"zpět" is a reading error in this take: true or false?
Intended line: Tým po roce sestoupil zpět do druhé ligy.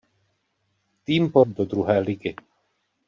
true